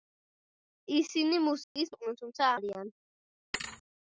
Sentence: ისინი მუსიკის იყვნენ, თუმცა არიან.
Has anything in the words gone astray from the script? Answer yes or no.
no